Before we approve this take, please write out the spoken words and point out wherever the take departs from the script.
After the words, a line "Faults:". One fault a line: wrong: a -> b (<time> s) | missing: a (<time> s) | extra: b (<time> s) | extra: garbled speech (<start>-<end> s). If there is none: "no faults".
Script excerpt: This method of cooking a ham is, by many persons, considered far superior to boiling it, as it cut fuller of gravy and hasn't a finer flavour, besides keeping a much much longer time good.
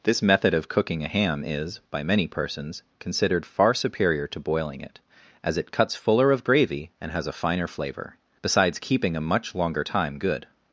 This method of cooking a ham is, by many persons, considered far superior to boiling it, as it cuts fuller of gravy and has a finer flavour, besides keeping a much longer time good.
Faults:
wrong: cut -> cuts (5.7 s)
wrong: hasn't -> has (7.1 s)
missing: much (9.5 s)